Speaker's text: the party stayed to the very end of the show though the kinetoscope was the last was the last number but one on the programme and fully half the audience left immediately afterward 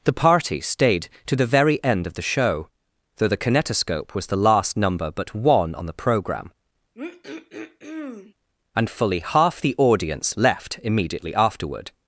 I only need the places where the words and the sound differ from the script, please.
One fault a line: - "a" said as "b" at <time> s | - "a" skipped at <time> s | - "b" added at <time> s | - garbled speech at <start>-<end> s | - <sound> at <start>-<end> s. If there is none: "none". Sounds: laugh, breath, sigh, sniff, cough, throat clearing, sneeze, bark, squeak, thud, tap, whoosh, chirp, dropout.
- "was the last" skipped at 4.8 s
- throat clearing at 6.9-8.3 s